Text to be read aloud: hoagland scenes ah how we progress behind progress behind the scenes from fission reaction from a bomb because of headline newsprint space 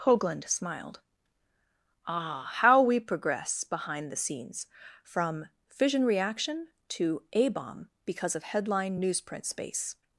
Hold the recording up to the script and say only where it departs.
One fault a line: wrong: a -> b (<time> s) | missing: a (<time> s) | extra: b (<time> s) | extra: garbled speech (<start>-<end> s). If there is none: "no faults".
wrong: scenes -> smiled (0.5 s)
missing: progress behind (4.1 s)
wrong: from -> to (6.9 s)